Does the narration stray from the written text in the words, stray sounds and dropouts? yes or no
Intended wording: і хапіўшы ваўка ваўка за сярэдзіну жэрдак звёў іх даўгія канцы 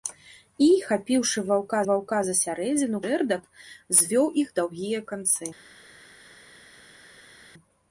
no